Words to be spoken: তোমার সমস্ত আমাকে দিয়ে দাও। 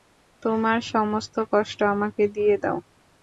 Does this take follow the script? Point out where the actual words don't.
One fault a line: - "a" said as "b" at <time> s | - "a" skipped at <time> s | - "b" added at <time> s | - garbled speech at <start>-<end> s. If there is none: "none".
- "কষ্ট" added at 1.5 s